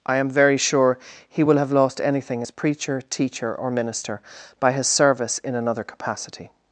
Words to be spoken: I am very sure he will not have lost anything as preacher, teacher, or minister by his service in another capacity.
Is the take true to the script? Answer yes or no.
no